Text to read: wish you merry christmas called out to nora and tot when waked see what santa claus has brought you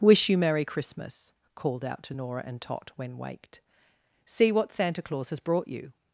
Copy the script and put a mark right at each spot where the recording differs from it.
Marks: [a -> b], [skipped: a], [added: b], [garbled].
wish you merry christmas called out to nora and tot when waked see what santa claus has brought you